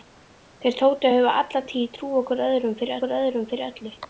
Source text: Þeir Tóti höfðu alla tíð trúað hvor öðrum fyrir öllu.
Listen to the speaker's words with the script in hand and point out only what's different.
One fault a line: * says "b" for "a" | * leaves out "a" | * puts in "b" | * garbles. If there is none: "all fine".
* puts in "hvor öðrum fyrir"